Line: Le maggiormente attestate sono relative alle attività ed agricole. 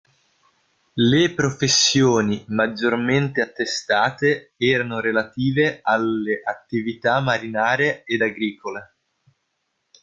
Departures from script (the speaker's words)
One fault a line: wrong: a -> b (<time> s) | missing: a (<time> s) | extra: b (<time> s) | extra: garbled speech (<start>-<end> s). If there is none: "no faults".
extra: professioni (1.4 s)
wrong: sono -> erano (4.6 s)
extra: marinare (7.2 s)